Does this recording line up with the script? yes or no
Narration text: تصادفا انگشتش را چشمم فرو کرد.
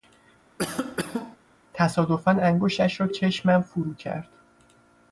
yes